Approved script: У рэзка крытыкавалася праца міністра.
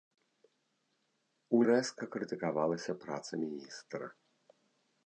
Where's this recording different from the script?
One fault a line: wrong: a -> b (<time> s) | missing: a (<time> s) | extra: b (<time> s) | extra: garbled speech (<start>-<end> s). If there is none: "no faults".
no faults